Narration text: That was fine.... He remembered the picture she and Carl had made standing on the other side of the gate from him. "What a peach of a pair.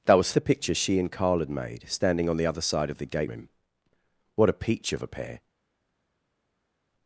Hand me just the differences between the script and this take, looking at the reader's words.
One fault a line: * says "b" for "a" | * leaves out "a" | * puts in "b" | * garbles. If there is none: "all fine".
* leaves out "fine He remembered"
* leaves out "from"